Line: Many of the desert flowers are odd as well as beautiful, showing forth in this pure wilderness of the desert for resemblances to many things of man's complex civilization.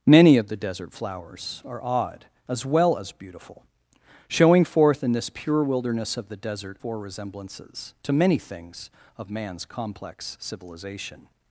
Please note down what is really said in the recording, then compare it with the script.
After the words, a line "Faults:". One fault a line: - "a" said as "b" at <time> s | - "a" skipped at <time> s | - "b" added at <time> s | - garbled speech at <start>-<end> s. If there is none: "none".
Many of the desert flowers are odd as well as beautiful, showing forth in this pure wilderness of the desert for resemblances to many things of man's complex civilization.
Faults:
none